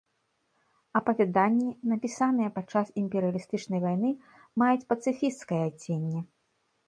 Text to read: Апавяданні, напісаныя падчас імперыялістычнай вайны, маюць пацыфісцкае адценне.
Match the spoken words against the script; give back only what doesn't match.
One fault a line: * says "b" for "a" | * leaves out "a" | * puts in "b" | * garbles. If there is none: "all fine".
all fine